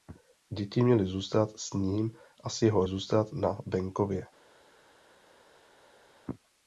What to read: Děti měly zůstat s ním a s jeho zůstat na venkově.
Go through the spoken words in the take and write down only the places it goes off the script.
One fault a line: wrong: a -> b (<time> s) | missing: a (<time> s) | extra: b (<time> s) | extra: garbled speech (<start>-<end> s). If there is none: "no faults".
no faults